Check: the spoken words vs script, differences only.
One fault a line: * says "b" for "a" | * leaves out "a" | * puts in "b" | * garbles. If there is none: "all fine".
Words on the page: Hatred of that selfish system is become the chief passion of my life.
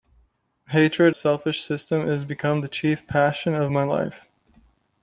* leaves out "of that"